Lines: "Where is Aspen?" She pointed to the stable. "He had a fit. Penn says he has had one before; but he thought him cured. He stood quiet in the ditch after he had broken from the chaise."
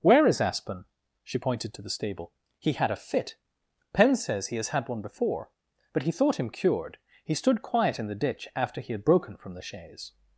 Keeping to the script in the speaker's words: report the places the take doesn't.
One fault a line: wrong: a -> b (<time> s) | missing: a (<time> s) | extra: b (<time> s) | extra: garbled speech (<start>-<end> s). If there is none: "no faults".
no faults